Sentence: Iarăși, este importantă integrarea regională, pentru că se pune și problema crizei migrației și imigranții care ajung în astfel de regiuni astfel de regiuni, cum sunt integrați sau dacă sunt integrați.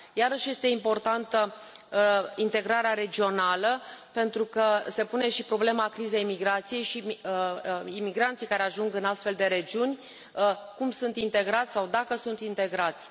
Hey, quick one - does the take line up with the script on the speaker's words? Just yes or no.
no